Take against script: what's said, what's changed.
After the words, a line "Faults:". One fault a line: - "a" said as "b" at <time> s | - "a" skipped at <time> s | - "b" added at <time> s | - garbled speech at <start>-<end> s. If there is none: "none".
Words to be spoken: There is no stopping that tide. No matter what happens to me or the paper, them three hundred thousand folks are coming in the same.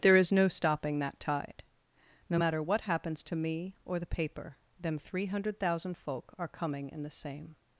There is no stopping that tide. No matter what happens to me or the paper, them three hundred thousand folk are coming in the same.
Faults:
- "folks" said as "folk" at 6.0 s